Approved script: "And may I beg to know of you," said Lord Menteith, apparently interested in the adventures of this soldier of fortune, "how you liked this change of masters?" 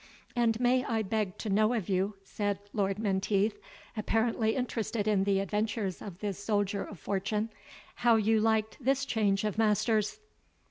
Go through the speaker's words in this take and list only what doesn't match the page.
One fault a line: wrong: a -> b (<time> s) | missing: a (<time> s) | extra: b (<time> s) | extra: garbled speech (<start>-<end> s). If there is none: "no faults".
no faults